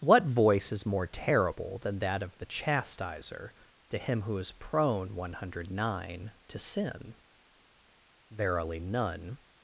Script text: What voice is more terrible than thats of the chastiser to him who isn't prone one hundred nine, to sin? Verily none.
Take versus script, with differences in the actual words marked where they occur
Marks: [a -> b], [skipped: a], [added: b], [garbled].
What voice is more terrible than [thats -> that] of the chastiser to him who [isn't -> is] prone one hundred nine, to sin? Verily none.